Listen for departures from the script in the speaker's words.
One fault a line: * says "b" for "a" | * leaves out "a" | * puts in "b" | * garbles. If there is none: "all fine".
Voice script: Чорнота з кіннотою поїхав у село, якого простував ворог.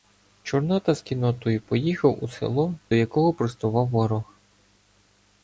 all fine